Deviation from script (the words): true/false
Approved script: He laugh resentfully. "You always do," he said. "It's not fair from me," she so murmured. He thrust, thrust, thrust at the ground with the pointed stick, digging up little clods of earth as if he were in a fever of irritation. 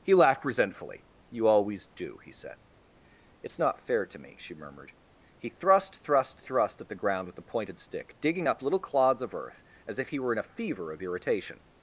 true